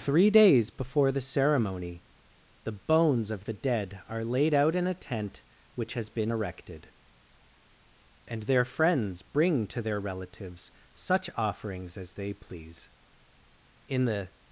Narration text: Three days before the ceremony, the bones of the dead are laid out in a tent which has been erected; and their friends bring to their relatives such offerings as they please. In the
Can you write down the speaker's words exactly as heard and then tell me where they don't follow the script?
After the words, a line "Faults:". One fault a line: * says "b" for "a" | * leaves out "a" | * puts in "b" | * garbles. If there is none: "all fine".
Three days before the ceremony, the bones of the dead are laid out in a tent which has been erected; and their friends bring to their relatives such offerings as they please. In the
Faults:
all fine